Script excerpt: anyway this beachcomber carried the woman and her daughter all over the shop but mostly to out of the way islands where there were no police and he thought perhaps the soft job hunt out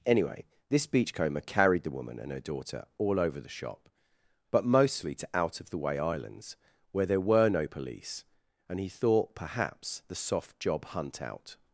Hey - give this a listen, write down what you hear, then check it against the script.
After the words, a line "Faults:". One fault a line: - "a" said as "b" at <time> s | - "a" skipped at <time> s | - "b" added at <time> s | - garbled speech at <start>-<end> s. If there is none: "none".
anyway this beachcomber carried the woman and her daughter all over the shop but mostly to out of the way islands where there were no police and he thought perhaps the soft job hunt out
Faults:
none